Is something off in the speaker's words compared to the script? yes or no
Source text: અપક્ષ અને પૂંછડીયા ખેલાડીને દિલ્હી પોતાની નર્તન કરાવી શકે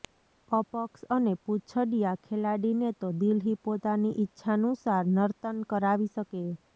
yes